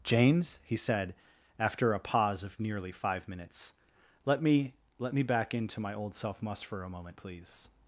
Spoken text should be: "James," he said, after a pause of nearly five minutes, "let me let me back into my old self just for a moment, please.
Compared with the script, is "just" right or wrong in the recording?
wrong